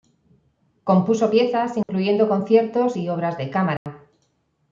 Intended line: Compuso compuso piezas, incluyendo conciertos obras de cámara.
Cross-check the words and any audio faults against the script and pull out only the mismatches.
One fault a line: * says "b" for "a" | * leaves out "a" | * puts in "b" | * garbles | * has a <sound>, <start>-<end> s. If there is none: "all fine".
* leaves out "compuso"
* has a dropout, 1.8-1.9 s
* puts in "y"
* has a dropout, 3.8-3.9 s